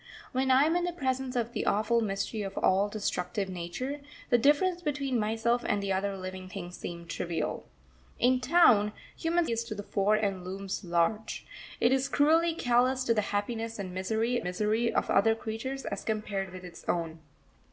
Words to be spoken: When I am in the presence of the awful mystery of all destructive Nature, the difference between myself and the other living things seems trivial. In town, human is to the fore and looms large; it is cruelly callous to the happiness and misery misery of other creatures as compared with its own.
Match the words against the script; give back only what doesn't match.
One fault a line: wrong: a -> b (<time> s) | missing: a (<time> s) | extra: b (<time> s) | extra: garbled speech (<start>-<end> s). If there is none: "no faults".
no faults